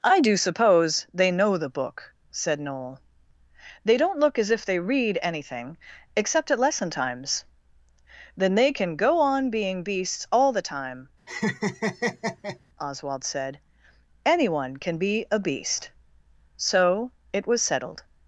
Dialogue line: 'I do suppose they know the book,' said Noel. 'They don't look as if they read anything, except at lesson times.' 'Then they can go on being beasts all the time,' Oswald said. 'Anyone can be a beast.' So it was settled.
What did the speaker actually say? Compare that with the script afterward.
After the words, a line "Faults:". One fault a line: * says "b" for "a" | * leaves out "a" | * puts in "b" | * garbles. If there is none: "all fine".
'I do suppose they know the book,' said Noel. 'They don't look as if they read anything, except at lesson times.' 'Then they can go on being beasts all the time,' Oswald said. 'Anyone can be a beast.' So it was settled.
Faults:
all fine